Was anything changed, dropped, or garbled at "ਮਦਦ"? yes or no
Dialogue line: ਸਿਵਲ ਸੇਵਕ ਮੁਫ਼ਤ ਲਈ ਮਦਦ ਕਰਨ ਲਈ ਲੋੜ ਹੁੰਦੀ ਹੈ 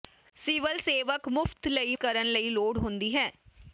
yes